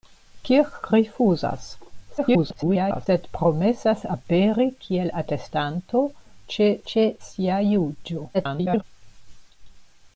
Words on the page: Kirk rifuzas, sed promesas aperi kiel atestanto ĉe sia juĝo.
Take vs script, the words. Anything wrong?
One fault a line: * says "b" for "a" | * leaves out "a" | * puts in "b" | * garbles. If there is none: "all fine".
* garbles
* puts in "ĉe"
* garbles